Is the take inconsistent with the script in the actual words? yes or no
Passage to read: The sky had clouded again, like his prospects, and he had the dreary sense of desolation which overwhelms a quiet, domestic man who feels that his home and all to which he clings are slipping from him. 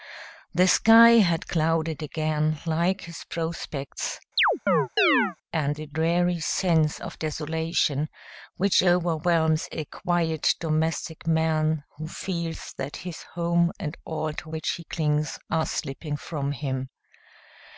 yes